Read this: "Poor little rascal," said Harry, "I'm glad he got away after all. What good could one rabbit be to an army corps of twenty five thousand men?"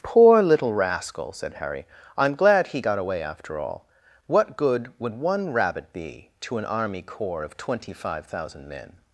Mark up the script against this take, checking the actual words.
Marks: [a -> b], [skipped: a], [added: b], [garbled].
"Poor little rascal," said Harry, "I'm glad he got away after all. What good [could -> would] one rabbit be to an army corps of twenty five thousand men?"